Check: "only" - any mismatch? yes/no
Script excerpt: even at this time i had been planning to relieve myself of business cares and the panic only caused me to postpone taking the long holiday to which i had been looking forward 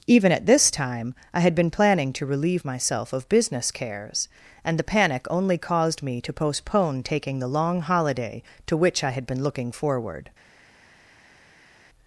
no